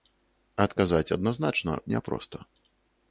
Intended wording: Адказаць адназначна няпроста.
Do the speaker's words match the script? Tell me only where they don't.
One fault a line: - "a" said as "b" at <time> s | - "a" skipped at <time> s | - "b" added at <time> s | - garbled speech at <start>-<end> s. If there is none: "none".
none